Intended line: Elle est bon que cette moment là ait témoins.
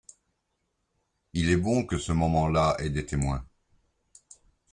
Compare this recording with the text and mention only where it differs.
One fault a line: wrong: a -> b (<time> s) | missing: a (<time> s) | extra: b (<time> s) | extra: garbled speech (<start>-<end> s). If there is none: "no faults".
wrong: Elle -> Il (1.3 s)
wrong: cette -> ce (2.0 s)
extra: des (2.9 s)